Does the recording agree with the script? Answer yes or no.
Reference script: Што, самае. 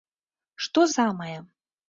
yes